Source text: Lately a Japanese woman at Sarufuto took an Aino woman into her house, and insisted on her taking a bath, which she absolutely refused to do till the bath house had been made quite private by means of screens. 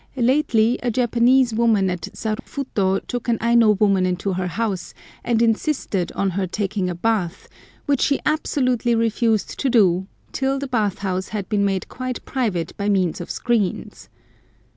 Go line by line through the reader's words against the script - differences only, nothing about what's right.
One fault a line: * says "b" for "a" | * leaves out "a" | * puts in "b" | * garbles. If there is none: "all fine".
all fine